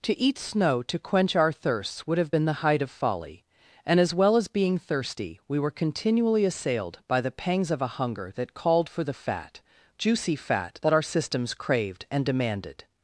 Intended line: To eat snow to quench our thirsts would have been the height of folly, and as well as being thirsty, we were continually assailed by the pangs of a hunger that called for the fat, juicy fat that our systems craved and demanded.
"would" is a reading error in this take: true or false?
false